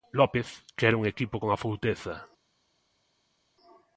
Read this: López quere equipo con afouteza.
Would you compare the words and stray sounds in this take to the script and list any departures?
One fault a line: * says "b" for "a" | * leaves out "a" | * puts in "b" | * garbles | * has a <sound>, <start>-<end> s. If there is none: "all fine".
* puts in "un"